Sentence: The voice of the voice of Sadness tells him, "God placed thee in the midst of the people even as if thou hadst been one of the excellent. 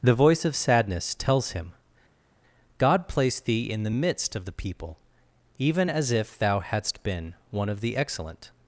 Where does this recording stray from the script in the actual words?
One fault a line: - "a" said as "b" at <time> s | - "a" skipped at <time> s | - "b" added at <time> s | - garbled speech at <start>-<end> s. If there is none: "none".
- "the voice of" skipped at 0.6 s